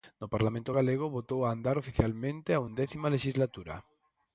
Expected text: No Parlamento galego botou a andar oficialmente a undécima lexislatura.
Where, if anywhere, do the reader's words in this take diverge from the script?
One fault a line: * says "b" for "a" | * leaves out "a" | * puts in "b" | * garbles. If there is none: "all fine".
all fine